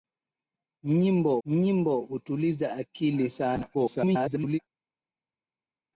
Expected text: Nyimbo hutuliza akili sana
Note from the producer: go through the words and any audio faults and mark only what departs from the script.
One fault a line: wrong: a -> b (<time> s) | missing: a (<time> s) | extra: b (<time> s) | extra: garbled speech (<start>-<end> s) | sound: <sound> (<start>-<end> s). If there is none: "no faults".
extra: nyimbo (1.4 s)
extra: garbled speech (3.7-4.6 s)